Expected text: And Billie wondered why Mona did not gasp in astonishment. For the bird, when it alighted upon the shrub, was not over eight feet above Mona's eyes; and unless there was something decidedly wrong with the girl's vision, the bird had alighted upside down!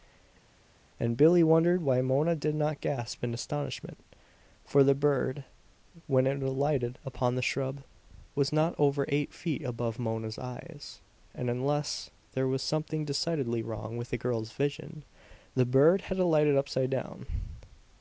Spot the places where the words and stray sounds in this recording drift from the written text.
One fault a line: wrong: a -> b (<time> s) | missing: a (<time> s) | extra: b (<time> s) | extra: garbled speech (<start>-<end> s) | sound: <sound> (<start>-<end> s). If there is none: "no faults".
no faults